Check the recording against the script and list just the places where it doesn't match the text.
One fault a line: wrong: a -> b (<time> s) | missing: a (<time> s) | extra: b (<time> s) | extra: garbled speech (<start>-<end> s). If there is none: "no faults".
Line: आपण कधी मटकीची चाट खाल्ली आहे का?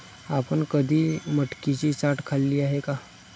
no faults